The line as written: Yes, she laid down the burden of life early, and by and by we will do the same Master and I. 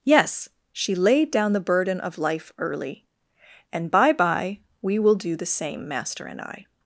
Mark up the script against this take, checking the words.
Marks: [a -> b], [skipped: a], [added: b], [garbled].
Yes, she laid down the burden of life early, and by [skipped: and] by we will do the same Master and I.